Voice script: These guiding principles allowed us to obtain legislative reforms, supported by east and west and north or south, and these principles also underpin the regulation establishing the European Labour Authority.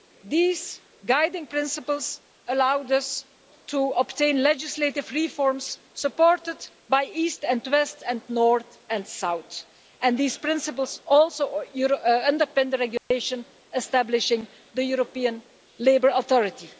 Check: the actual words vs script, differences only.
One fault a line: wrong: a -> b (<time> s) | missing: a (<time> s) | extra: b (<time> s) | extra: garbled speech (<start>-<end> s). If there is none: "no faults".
wrong: or -> and (8.9 s)